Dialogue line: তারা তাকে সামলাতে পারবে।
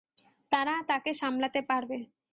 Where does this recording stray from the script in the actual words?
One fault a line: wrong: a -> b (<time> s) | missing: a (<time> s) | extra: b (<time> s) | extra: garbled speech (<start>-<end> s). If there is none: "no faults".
no faults